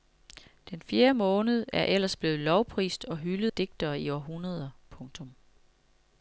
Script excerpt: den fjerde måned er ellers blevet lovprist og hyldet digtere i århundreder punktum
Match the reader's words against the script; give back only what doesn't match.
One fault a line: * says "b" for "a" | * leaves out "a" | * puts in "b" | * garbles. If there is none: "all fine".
all fine